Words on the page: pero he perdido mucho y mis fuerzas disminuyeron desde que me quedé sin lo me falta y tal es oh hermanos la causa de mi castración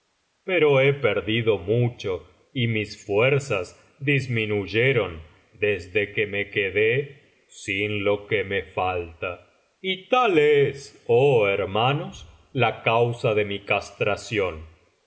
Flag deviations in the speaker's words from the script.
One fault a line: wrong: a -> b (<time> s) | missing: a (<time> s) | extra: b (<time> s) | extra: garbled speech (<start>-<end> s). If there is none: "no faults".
extra: que (8.3 s)